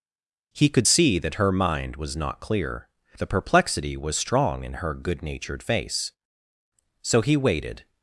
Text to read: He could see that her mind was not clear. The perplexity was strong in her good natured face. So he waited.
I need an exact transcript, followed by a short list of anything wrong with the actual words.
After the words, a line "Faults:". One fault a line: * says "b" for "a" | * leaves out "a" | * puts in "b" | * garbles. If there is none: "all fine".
He could see that her mind was not clear. The perplexity was strong in her good natured face. So he waited.
Faults:
all fine